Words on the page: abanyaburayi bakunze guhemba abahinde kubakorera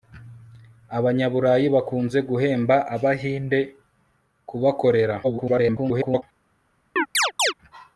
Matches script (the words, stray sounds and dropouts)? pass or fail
fail